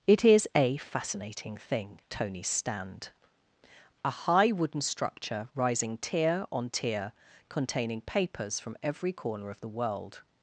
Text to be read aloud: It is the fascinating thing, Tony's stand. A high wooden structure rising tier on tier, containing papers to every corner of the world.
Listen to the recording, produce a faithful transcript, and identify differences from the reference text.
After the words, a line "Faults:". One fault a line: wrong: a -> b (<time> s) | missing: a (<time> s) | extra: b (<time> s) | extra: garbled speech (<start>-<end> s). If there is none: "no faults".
It is a fascinating thing, Tony's stand. A high wooden structure rising tier on tier, containing papers from every corner of the world.
Faults:
wrong: the -> a (0.5 s)
wrong: to -> from (8.6 s)